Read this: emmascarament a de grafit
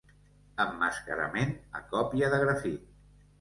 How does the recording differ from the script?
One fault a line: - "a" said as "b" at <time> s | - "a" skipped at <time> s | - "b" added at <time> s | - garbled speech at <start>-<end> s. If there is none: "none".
- "còpia" added at 1.9 s